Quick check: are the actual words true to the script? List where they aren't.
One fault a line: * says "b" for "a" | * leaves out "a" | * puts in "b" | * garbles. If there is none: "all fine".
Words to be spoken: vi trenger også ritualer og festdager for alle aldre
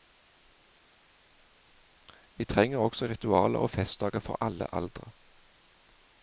all fine